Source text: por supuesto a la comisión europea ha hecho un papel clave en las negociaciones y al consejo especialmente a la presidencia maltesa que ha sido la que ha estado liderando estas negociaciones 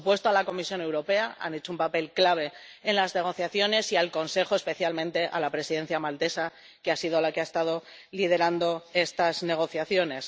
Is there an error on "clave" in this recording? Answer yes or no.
no